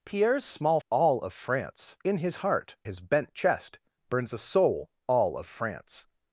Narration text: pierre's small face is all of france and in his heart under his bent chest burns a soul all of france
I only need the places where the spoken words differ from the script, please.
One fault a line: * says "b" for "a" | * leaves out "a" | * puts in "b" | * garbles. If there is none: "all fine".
* leaves out "face is"
* leaves out "and"
* leaves out "under"